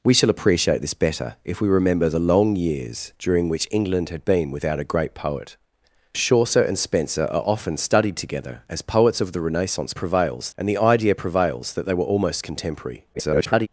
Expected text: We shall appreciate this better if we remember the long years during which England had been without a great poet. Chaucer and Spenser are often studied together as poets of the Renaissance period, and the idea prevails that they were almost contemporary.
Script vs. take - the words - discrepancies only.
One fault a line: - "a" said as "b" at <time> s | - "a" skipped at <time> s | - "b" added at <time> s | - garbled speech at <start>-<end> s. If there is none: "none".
- "period" said as "prevails" at 9.9 s
- garbled speech at 13.1-13.7 s